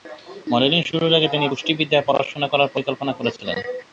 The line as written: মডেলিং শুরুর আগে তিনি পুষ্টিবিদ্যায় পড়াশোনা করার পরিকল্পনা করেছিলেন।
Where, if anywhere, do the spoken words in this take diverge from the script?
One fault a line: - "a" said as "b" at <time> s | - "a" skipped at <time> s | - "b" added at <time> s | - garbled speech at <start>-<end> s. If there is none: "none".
none